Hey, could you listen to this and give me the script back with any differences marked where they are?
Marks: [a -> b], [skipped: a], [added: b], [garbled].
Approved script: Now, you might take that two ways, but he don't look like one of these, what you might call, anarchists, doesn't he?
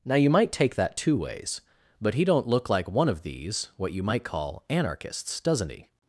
Now, you might take that two ways, but he don't look like one of these, what you might call, anarchists, doesn't he?